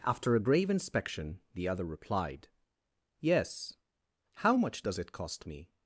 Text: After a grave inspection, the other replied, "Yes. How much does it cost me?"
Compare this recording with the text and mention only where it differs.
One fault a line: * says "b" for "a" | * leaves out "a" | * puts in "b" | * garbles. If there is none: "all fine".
all fine